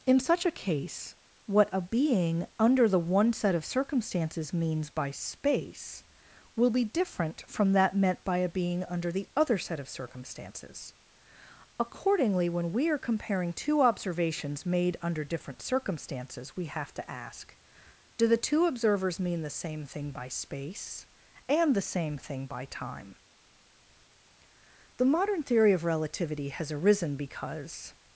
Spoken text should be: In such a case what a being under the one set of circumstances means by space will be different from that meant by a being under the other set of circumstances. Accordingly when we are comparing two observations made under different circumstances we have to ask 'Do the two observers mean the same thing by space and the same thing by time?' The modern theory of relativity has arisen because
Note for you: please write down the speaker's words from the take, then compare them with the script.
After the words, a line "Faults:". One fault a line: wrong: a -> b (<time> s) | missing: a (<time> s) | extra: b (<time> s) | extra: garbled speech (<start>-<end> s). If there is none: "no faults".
In such a case what a being under the one set of circumstances means by space will be different from that meant by a being under the other set of circumstances. Accordingly when we are comparing two observations made under different circumstances we have to ask 'Do the two observers mean the same thing by space and the same thing by time?' The modern theory of relativity has arisen because
Faults:
no faults